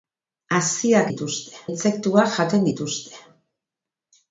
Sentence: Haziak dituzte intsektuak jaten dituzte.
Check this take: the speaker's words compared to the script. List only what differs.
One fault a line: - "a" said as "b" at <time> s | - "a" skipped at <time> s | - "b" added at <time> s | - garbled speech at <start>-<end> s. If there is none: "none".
none